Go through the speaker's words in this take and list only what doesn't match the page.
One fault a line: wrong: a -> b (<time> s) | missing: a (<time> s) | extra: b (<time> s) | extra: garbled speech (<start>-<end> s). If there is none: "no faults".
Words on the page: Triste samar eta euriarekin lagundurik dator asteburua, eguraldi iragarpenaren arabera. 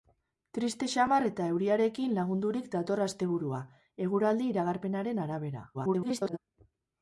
extra: garbled speech (5.7-6.4 s)